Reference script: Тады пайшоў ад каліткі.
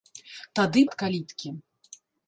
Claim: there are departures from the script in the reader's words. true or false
true